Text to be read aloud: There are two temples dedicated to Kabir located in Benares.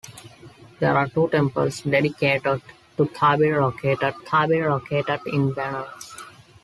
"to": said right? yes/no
yes